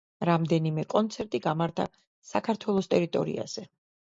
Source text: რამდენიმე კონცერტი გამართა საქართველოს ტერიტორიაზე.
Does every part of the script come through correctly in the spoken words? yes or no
yes